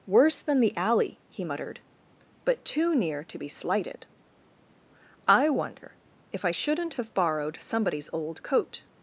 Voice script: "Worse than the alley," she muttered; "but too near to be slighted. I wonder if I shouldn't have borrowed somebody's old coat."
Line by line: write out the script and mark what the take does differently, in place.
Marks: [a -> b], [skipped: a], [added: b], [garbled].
"Worse than the alley," [she -> he] muttered; "but too near to be slighted. I wonder if I shouldn't have borrowed somebody's old coat."